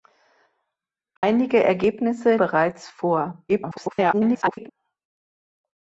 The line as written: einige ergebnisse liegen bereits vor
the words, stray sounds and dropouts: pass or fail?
fail